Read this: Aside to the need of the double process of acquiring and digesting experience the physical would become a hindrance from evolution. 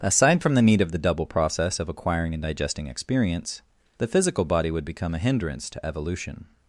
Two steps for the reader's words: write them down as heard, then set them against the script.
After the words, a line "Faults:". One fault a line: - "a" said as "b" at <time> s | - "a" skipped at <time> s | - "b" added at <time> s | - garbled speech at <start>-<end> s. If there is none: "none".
Aside from the need of the double process of acquiring and digesting experience the physical body would become a hindrance to evolution.
Faults:
- "to" said as "from" at 0.4 s
- "body" added at 4.5 s
- "from" said as "to" at 5.7 s